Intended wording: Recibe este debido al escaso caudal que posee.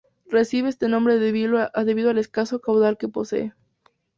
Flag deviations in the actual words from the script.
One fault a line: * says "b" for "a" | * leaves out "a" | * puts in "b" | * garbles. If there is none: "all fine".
* puts in "nombre"